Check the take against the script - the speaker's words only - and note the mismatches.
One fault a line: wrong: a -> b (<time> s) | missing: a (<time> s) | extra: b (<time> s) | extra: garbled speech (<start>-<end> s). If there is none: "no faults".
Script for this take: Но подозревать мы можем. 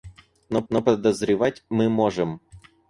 extra: но (0.7 s)